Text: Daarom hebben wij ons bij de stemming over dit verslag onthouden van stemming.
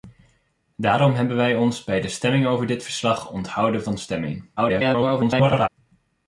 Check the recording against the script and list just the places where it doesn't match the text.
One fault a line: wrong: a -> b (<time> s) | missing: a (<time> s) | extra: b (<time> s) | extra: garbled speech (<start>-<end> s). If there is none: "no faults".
extra: garbled speech (4.6-5.7 s)